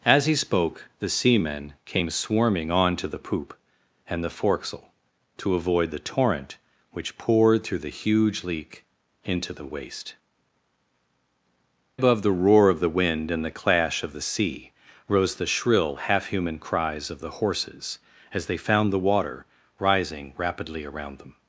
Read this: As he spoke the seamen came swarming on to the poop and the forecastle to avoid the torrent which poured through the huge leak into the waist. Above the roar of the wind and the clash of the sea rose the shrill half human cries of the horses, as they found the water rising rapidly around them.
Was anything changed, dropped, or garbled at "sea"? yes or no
no